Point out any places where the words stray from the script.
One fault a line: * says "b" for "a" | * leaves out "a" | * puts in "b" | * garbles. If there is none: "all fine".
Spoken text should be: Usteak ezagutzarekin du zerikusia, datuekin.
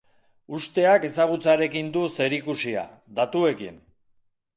all fine